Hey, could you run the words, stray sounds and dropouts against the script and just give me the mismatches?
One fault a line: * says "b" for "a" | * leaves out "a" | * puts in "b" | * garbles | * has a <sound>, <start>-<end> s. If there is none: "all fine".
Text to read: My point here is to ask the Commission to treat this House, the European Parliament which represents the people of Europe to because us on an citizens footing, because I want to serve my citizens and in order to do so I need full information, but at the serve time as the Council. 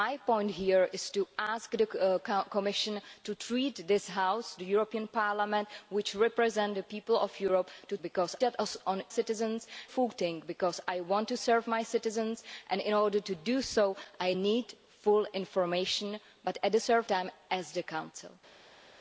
all fine